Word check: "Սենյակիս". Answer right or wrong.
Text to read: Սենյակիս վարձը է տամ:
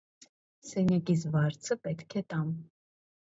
right